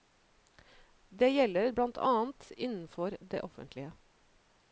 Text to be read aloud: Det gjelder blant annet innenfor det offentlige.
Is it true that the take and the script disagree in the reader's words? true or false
false